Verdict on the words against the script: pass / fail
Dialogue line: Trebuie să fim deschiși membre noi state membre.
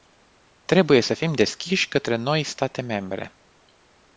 fail